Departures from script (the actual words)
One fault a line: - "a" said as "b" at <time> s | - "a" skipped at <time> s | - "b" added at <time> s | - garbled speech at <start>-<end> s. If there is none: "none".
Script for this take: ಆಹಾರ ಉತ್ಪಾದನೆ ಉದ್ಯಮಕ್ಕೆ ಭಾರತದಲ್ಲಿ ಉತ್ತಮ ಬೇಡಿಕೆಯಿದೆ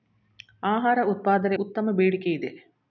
- "ಉದ್ಯಮಕ್ಕೆ ಭಾರತದಲ್ಲಿ" skipped at 1.6 s